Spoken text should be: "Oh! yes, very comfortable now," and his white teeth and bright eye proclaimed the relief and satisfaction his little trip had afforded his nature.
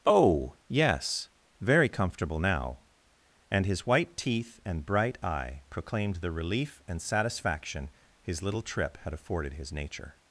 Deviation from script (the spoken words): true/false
false